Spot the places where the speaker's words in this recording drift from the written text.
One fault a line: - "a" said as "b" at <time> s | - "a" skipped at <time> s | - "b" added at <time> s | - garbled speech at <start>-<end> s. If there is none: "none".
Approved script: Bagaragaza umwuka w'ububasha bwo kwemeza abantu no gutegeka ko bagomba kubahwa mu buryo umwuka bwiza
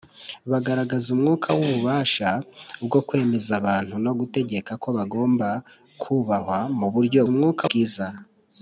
none